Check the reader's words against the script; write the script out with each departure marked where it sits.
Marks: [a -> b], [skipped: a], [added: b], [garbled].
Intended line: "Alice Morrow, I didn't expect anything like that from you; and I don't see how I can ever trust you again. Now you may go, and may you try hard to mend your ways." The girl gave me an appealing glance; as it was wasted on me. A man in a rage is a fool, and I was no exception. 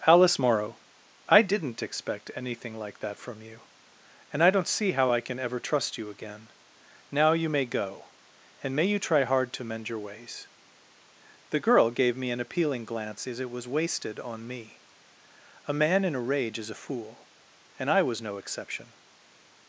"Alice Morrow, I didn't expect anything like that from you; and I don't see how I can ever trust you again. Now you may go, and may you try hard to mend your ways." The girl gave me an appealing glance; as it was wasted on me. A man in a rage is a fool, and I was no exception.